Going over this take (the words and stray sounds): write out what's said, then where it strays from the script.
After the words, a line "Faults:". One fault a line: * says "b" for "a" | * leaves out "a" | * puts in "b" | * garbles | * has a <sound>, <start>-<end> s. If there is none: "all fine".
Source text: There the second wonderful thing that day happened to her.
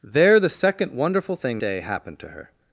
There the second wonderful thing day happened to her.
Faults:
* leaves out "that"